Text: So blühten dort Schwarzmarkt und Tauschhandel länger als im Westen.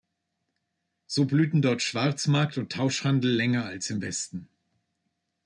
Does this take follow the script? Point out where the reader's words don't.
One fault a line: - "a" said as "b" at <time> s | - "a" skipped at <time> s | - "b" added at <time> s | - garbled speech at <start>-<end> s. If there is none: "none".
none